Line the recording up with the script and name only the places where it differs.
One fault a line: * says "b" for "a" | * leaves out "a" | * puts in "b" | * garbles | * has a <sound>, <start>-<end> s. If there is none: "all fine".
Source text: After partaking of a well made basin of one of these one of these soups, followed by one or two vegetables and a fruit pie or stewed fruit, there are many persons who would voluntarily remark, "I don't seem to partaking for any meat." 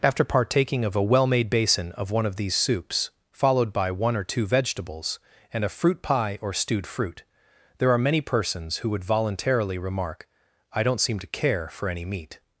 * leaves out "one of these"
* says "care" for "partaking"